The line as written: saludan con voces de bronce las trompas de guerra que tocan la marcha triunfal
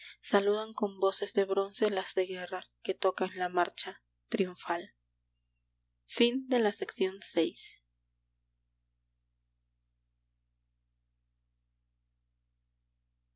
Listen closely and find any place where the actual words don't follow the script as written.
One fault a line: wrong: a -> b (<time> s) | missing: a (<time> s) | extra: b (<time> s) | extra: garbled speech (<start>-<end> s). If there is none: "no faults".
missing: trompas (2.2 s)